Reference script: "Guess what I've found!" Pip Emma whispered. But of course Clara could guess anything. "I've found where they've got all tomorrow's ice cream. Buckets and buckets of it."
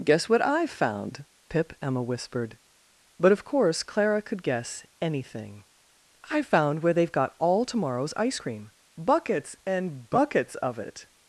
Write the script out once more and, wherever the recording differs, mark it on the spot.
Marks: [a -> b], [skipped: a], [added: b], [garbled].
"Guess what I've found!" Pip Emma whispered. But of course Clara could guess anything. "I've found where they've got all tomorrow's ice cream. Buckets and buckets of it."